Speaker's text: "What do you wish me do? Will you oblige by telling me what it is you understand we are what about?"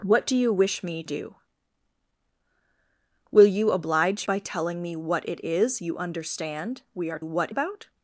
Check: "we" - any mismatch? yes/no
no